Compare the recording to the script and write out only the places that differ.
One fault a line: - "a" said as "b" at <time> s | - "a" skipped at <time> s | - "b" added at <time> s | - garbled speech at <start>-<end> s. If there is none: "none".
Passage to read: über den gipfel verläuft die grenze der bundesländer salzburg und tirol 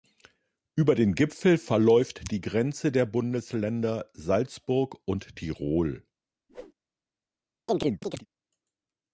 none